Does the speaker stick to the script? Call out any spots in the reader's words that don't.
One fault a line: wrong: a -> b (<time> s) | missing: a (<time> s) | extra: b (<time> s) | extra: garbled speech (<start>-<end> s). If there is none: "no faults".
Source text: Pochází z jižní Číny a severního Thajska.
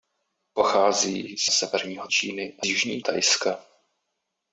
wrong: jižní -> severního (1.5 s)
wrong: severního -> jižní (2.6 s)